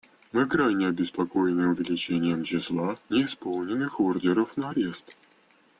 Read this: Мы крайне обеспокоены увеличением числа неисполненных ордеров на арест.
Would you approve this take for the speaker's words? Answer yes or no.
yes